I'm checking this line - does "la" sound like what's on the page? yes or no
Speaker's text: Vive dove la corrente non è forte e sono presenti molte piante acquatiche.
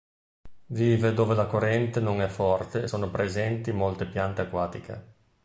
yes